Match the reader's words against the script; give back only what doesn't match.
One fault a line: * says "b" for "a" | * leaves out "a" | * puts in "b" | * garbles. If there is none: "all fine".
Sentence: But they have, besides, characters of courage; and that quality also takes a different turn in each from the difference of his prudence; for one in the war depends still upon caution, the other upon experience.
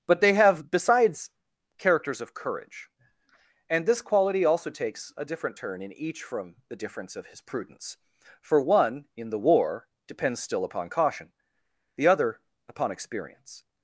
* says "this" for "that"